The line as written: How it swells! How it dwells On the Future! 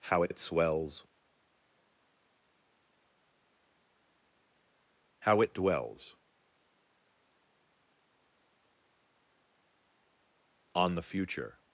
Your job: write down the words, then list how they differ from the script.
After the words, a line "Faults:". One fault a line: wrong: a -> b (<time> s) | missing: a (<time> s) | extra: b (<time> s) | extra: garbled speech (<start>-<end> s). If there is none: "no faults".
How it it swells! How it dwells On the Future!
Faults:
extra: it (0.3 s)